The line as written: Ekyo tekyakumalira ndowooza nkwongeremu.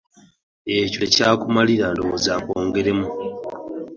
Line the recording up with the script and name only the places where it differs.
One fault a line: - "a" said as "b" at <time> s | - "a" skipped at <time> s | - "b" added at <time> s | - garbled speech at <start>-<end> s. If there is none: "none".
none